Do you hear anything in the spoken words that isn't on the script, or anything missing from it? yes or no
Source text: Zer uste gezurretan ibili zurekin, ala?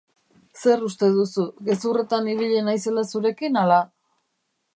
yes